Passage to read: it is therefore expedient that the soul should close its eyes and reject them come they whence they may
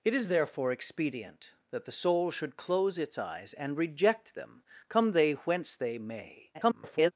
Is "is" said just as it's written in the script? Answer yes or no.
yes